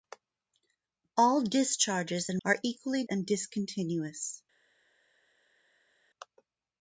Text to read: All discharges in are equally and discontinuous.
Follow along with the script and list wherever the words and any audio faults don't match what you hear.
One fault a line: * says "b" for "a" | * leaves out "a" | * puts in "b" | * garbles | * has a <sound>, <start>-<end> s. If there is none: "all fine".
all fine